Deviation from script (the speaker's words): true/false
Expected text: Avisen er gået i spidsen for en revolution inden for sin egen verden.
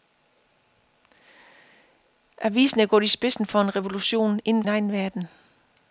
true